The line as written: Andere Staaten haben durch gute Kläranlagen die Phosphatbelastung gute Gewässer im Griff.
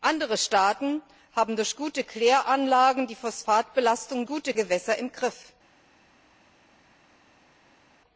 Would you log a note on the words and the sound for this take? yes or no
no